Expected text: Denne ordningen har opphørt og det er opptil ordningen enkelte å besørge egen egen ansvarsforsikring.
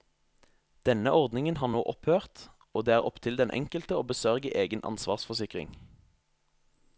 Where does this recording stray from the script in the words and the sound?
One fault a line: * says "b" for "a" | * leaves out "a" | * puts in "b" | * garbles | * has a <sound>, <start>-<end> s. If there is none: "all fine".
* puts in "nå"
* says "den" for "ordningen"
* leaves out "egen"